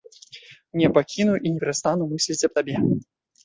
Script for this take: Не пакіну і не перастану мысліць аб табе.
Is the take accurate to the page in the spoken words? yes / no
yes